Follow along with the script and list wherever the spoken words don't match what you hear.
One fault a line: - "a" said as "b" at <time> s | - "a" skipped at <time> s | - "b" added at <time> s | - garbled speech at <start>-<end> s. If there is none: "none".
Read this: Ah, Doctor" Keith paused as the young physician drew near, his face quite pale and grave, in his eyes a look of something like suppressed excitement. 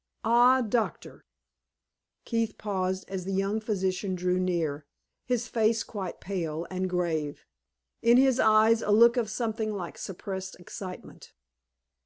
none